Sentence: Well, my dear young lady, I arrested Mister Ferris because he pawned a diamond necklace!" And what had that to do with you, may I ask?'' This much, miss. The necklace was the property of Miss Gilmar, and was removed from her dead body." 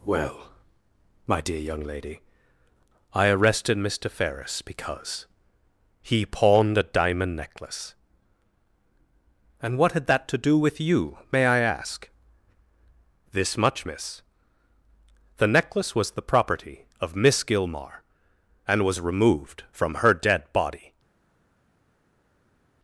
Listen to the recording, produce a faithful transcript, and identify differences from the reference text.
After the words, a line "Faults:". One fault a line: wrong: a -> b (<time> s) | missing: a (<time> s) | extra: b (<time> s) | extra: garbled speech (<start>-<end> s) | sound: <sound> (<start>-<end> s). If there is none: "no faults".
Well, my dear young lady, I arrested Mister Ferris because he pawned a diamond necklace!" And what had that to do with you, may I ask?'' This much, miss. The necklace was the property of Miss Gilmar, and was removed from her dead body."
Faults:
no faults